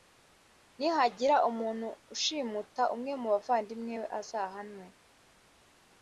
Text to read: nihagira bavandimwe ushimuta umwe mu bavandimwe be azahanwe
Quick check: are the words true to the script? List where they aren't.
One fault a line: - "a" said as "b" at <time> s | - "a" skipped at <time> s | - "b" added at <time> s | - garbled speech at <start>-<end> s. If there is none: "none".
- "bavandimwe" said as "umuntu" at 1.5 s